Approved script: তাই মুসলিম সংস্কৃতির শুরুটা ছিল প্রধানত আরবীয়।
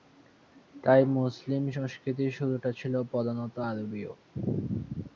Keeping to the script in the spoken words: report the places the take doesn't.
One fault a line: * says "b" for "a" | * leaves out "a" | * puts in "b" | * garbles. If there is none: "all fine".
all fine